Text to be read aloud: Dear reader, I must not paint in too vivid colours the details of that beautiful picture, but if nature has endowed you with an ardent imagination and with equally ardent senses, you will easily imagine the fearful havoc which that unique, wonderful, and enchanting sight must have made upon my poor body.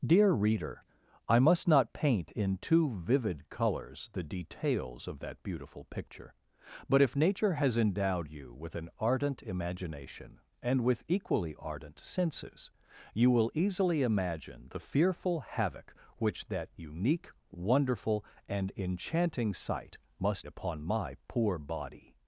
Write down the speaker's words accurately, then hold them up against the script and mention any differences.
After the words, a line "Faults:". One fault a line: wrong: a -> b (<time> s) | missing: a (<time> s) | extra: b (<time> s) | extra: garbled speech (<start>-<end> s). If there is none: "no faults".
Dear reader, I must not paint in too vivid colours the details of that beautiful picture, but if nature has endowed you with an ardent imagination and with equally ardent senses, you will easily imagine the fearful havoc which that unique, wonderful, and enchanting sight must upon my poor body.
Faults:
missing: have made (20.5 s)